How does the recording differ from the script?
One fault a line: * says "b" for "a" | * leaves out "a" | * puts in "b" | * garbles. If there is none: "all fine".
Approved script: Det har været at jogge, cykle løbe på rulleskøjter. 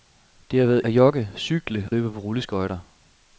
all fine